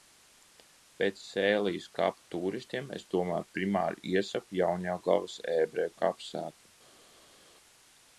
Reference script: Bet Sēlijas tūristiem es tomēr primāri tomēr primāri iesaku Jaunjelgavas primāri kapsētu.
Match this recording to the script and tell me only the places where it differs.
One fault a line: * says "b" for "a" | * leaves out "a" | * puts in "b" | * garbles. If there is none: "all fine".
* puts in "kapu"
* leaves out "tomēr primāri"
* says "ebreju" for "primāri"